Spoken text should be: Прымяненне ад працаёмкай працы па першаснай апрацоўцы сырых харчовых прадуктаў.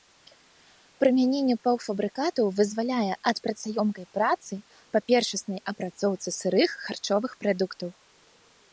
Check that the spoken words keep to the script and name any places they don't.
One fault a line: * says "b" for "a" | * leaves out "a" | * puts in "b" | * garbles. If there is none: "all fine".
* puts in "паўфабрыкатаў вызваляе"